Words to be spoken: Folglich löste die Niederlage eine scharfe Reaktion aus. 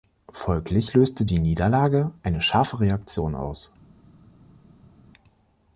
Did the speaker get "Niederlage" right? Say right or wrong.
right